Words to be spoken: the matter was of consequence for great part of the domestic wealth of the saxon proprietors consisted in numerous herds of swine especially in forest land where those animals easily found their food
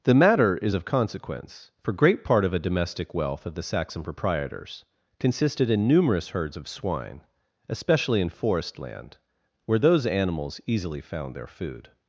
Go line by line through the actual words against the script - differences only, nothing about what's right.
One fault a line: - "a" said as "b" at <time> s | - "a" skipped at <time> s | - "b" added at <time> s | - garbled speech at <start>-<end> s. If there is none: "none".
- "was" said as "is" at 0.6 s
- "the" said as "a" at 2.5 s